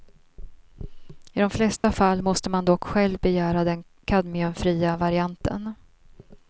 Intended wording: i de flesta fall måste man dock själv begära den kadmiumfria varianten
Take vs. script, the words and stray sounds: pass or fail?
fail